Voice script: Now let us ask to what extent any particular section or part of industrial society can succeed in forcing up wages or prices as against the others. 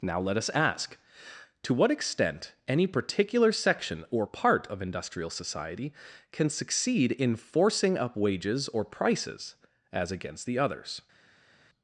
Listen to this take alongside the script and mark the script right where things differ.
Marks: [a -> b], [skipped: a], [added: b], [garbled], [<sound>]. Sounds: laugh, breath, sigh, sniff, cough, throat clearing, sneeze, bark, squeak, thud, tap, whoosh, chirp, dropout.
Now let us ask to what extent any particular section or part of industrial society can succeed in forcing up wages or prices as against the others.